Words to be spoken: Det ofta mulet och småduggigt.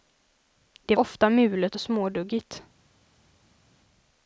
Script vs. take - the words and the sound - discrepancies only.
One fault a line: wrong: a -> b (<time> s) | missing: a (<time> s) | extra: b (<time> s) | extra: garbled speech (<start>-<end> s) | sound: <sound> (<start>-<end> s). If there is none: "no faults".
no faults